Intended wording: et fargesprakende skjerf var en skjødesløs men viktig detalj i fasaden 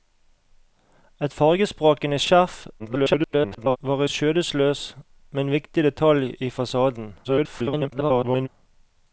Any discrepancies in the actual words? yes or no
yes